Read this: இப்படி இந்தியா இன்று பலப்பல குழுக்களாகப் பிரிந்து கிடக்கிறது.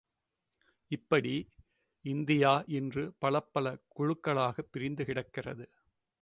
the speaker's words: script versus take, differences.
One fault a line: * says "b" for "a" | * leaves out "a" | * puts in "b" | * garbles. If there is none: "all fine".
all fine